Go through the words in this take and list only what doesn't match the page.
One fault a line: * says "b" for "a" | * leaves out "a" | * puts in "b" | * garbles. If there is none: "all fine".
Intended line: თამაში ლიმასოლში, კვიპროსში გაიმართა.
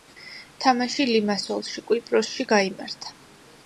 all fine